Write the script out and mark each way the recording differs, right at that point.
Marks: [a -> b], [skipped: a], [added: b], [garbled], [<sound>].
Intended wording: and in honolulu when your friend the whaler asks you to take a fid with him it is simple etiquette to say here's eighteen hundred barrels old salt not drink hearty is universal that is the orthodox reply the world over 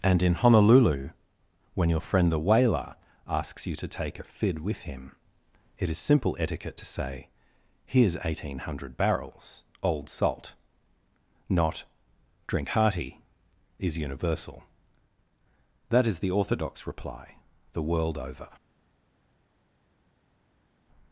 and in honolulu when your friend the whaler asks you to take a fid with him it is simple etiquette to say here's eighteen hundred barrels old salt not drink hearty is universal that is the orthodox reply the world over